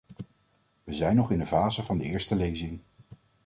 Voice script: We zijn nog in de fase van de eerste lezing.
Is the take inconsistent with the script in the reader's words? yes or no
no